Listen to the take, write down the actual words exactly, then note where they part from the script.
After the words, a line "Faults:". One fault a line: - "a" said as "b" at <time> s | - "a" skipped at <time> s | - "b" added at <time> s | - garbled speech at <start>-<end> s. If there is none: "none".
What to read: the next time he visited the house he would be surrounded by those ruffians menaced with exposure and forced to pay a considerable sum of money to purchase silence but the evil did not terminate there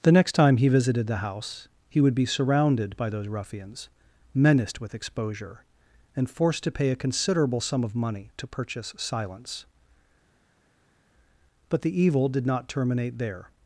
the next time he visited the house he would be surrounded by those ruffians menaced with exposure and forced to pay a considerable sum of money to purchase silence but the evil did not terminate there
Faults:
none